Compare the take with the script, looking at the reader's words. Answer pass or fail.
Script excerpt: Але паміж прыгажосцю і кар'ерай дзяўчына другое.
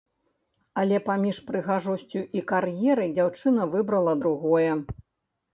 fail